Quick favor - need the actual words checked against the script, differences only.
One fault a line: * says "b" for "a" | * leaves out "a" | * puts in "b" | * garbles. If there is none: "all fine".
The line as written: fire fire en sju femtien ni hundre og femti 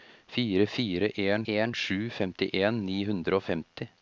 * puts in "en"